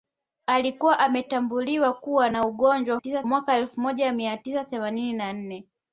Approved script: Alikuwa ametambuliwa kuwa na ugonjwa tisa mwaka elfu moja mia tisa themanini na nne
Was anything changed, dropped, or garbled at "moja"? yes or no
no